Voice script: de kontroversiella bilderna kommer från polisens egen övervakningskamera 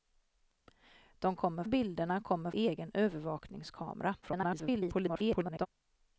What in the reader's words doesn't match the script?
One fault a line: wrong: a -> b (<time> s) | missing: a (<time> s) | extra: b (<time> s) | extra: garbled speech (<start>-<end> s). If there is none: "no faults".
wrong: kontroversiella -> kommer (1.3 s)
missing: från polisens (2.5 s)
extra: garbled speech (4.2-5.7 s)